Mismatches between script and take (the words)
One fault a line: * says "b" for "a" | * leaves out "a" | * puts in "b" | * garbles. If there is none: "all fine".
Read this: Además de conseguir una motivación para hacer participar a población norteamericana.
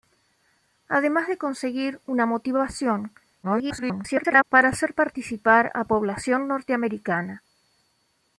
* garbles